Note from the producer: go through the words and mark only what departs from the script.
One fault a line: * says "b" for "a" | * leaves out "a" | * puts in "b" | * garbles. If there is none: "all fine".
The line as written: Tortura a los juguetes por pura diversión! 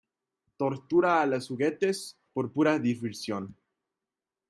all fine